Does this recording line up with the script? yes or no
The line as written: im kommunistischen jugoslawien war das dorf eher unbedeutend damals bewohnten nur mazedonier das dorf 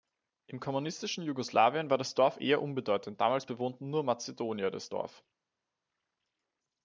yes